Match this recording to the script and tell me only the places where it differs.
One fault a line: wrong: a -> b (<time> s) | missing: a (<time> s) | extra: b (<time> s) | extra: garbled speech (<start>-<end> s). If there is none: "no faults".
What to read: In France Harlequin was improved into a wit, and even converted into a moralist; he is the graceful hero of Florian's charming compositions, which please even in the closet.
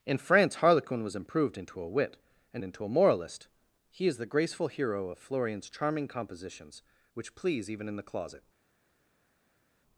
missing: even converted (2.6 s)